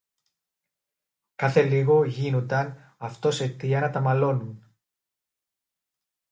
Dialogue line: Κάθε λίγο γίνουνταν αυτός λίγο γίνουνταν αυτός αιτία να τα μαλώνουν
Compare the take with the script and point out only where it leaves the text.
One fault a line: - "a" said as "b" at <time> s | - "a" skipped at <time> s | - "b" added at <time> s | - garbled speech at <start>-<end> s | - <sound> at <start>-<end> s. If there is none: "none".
- "λίγο γίνουνταν αυτός" skipped at 3.4 s